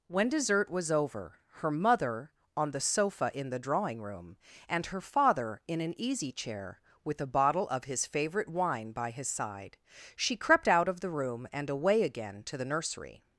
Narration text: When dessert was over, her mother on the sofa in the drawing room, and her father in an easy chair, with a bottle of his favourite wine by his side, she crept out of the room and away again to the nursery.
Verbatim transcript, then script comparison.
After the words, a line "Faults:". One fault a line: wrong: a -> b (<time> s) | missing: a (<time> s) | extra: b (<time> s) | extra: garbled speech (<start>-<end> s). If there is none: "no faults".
When dessert was over, her mother on the sofa in the drawing room, and her father in an easy chair, with a bottle of his favourite wine by his side, she crept out of the room and away again to the nursery.
Faults:
no faults